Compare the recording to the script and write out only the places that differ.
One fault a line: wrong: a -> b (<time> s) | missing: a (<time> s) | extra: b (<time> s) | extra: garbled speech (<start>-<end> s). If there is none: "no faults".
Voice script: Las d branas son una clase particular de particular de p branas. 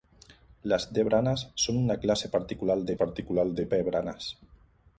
no faults